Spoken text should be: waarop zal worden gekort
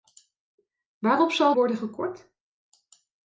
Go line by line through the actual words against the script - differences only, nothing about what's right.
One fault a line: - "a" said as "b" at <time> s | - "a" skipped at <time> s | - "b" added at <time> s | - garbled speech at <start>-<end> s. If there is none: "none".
none